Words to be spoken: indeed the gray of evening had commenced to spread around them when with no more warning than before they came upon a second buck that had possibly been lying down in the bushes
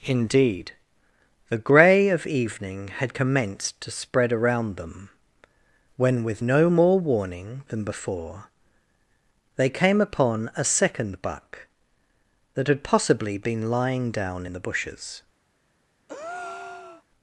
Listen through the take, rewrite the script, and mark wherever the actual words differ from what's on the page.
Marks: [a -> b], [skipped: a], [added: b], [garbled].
indeed the gray of evening had commenced to spread around them when with no more warning than before they came upon a second buck that had possibly been lying down in the bushes